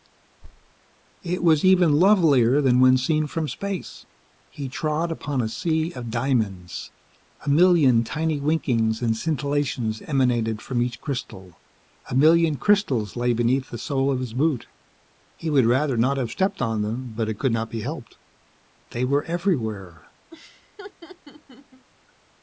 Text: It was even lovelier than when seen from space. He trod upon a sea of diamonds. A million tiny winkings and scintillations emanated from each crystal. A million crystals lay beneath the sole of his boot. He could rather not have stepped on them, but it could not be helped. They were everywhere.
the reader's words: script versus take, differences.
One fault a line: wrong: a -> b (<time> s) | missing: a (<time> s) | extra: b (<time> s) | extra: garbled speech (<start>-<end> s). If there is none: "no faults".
wrong: could -> would (15.5 s)